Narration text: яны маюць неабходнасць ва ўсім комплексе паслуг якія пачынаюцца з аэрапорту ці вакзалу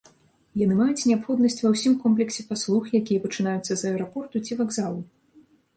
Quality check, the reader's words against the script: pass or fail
pass